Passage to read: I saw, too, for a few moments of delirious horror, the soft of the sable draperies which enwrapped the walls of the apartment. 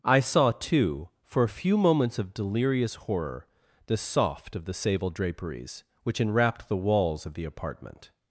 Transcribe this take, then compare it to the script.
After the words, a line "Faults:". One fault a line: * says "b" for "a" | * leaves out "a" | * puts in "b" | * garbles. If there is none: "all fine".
I saw, too, for a few moments of delirious horror, the soft of the sable draperies which enwrapped the walls of the apartment.
Faults:
all fine